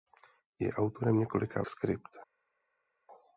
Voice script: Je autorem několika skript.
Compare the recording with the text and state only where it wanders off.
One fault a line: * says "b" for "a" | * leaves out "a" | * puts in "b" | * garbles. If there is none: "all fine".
all fine